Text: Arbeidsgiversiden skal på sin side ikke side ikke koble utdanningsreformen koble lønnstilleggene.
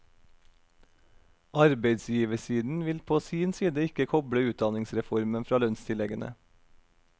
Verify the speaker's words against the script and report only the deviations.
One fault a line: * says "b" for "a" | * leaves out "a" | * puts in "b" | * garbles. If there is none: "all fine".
* says "vil" for "skal"
* leaves out "side ikke"
* says "fra" for "koble"